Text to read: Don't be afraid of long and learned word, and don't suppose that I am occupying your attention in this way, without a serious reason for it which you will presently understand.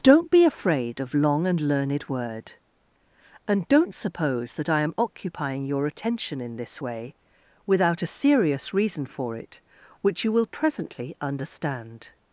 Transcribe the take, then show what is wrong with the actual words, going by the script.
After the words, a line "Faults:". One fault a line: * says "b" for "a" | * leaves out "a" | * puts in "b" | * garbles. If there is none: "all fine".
Don't be afraid of long and learned word, and don't suppose that I am occupying your attention in this way, without a serious reason for it which you will presently understand.
Faults:
all fine